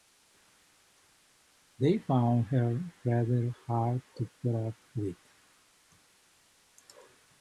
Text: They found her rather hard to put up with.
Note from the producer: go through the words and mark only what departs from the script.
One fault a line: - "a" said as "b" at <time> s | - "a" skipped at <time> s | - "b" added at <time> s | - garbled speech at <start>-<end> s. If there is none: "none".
none